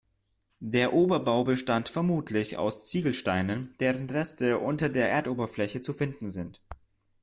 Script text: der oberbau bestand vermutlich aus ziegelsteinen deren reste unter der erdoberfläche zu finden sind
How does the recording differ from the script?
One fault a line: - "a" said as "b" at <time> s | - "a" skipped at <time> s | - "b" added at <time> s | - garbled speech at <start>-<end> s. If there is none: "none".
none